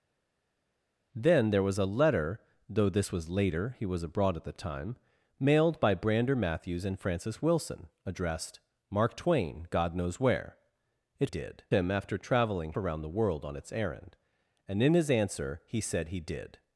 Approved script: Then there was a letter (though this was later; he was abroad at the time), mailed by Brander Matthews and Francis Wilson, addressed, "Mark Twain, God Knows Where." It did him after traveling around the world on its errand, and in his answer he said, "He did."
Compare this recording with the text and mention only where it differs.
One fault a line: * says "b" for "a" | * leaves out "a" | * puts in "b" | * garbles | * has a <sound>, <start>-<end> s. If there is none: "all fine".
all fine